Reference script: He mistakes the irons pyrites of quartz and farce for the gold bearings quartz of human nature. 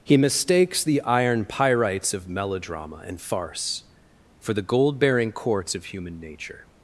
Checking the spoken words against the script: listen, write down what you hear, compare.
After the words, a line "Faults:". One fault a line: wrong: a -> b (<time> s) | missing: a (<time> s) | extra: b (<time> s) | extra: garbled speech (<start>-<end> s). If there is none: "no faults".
He mistakes the iron pyrites of melodrama and farce for the gold bearing quartz of human nature.
Faults:
wrong: irons -> iron (1.0 s)
wrong: quartz -> melodrama (2.3 s)
wrong: bearings -> bearing (5.0 s)